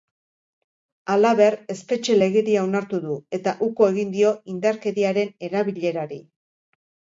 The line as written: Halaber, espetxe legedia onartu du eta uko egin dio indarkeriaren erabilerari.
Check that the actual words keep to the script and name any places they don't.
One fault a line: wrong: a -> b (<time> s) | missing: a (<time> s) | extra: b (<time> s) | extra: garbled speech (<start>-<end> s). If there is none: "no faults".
no faults